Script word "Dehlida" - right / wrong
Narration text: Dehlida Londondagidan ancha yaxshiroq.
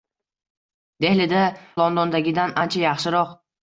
right